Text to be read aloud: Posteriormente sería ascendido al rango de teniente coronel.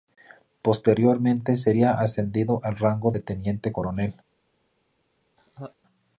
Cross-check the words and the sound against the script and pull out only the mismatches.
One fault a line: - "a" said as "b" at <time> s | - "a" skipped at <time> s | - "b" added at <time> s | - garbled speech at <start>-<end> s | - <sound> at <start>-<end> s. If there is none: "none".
- laugh at 5.4-5.8 s